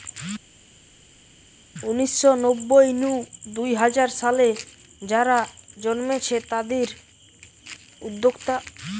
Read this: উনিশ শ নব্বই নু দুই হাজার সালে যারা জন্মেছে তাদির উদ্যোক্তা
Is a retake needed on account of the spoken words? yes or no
no